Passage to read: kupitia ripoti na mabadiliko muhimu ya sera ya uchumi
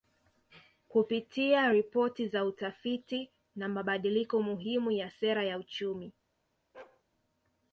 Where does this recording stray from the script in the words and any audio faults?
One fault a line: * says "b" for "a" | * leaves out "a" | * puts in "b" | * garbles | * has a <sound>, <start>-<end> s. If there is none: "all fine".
* puts in "za utafiti"
* has a bark, 6.7-7.0 s